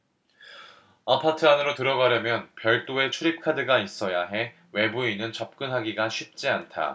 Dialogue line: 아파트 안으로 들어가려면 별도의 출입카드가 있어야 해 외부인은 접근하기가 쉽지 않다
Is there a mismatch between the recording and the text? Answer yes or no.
no